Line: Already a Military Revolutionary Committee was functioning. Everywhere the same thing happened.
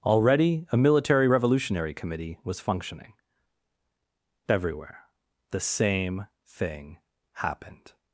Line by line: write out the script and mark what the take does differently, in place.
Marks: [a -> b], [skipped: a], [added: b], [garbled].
Already a Military Revolutionary Committee was functioning. Everywhere the same thing happened.